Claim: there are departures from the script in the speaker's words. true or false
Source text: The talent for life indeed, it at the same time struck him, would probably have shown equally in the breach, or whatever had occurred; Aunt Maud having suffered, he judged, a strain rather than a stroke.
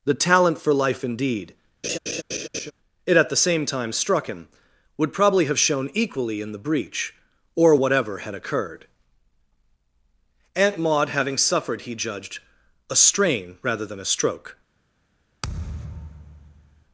false